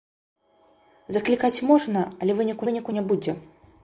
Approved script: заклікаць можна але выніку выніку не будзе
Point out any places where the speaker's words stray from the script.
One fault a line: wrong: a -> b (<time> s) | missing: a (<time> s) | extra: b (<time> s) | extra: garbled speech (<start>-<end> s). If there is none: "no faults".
no faults